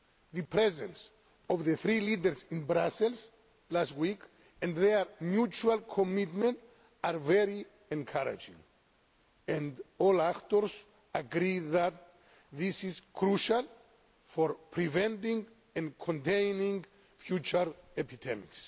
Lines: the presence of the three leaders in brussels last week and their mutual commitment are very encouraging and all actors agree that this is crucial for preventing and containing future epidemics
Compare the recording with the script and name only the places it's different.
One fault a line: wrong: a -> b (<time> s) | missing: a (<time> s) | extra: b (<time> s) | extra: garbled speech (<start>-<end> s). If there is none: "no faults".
no faults